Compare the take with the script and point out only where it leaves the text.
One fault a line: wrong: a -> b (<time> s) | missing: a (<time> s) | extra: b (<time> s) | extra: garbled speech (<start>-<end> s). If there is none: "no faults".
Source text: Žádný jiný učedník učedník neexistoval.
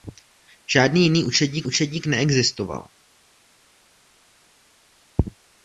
no faults